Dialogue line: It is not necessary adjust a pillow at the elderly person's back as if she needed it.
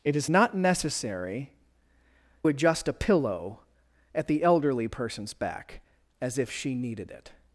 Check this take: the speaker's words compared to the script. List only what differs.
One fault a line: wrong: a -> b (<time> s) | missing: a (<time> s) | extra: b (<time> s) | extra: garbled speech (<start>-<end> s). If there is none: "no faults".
no faults